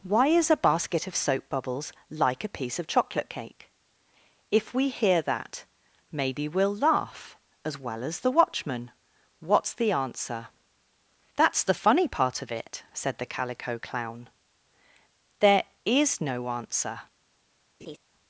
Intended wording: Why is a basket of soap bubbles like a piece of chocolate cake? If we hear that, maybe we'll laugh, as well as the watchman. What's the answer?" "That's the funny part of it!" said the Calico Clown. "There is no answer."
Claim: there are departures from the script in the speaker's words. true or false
false